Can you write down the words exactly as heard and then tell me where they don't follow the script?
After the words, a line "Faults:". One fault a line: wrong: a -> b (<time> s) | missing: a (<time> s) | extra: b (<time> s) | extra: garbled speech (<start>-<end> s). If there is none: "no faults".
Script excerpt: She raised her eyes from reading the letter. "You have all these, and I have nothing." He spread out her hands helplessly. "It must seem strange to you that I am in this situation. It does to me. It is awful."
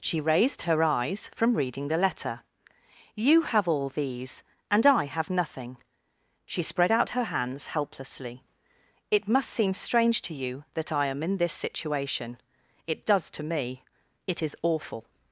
She raised her eyes from reading the letter. "You have all these, and I have nothing." She spread out her hands helplessly. "It must seem strange to you that I am in this situation. It does to me. It is awful."
Faults:
wrong: He -> She (6.5 s)